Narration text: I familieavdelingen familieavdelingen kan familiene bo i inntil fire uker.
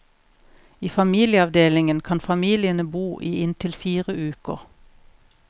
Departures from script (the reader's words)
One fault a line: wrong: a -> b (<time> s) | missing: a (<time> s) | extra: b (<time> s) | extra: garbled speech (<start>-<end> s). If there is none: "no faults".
missing: familieavdelingen (2.0 s)